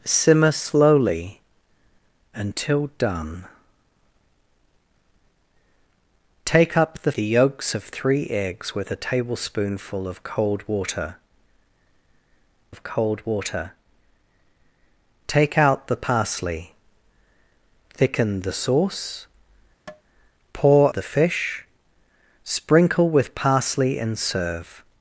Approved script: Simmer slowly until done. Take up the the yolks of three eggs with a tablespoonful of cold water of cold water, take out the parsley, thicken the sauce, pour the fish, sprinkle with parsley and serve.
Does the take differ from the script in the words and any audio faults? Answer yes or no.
yes